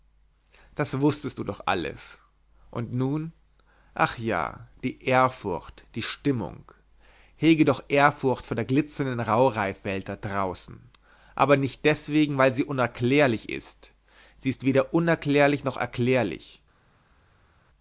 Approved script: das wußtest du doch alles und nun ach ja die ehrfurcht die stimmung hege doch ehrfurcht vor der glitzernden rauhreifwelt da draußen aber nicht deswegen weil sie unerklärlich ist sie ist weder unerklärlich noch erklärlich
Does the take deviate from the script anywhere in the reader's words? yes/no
no